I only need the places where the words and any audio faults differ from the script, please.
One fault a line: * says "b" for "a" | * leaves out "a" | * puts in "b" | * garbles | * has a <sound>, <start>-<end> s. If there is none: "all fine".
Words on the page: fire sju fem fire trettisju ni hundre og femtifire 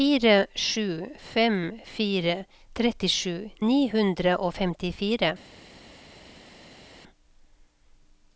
all fine